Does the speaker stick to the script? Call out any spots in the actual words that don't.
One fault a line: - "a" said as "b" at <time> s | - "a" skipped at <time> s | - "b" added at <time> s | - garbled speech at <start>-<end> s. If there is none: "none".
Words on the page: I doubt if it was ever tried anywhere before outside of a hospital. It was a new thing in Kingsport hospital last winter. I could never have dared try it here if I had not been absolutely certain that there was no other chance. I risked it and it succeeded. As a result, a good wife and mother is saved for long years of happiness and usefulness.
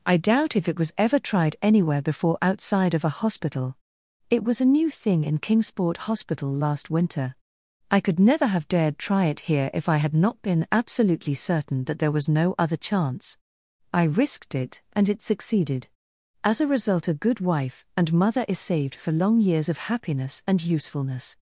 none